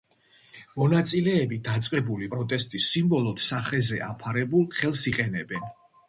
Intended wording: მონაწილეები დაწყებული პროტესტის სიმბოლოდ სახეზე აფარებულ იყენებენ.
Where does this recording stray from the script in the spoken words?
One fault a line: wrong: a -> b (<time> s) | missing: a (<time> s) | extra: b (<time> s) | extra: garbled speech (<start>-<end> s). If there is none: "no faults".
extra: ხელს (4.8 s)